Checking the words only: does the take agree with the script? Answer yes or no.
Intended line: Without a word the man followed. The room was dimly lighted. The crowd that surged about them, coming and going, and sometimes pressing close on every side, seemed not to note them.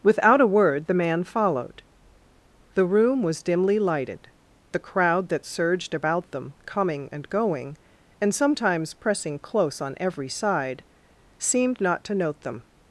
yes